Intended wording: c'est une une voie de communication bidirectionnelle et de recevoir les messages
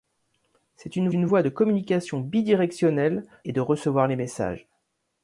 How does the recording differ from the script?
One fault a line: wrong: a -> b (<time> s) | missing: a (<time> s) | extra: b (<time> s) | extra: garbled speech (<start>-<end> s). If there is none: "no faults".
no faults